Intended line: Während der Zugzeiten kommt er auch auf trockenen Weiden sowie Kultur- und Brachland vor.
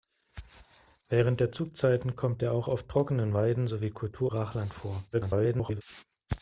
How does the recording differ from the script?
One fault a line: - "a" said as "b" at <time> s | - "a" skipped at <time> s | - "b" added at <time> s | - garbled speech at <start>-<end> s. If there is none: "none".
- "und" skipped at 4.3 s
- garbled speech at 5.1-5.8 s